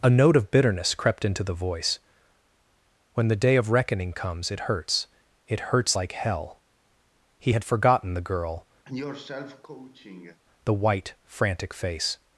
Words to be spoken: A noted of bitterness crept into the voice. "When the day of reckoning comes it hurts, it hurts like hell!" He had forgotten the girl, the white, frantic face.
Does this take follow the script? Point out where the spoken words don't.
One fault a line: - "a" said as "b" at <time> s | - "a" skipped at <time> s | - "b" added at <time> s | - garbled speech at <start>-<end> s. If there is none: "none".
- "noted" said as "note" at 0.1 s